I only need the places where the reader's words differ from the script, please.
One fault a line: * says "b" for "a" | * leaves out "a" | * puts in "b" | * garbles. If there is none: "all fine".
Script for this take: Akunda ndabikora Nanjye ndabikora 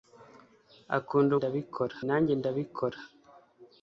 all fine